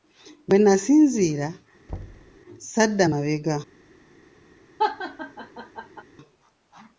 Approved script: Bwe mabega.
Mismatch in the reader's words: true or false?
true